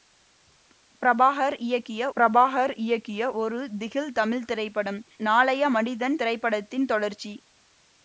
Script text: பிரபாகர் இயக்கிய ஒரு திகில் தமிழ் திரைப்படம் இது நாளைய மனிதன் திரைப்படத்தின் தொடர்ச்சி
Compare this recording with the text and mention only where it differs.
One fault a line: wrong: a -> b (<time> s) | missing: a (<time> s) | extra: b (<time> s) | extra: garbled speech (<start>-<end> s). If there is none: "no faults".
extra: பிரபாகர் இயக்கிய (2.2 s)
missing: இது (5.0 s)